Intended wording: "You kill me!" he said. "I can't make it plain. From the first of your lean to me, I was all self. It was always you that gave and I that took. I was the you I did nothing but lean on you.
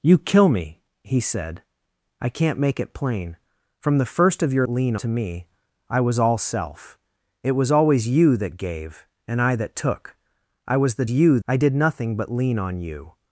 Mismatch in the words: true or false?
false